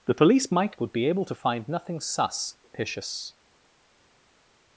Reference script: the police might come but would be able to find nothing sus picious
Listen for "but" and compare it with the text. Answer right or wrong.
wrong